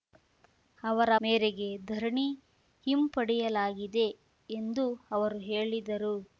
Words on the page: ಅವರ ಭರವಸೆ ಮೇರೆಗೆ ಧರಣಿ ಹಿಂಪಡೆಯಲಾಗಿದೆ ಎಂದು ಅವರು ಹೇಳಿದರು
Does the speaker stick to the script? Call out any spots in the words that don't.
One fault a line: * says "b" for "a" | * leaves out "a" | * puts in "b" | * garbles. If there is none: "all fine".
* leaves out "ಭರವಸೆ"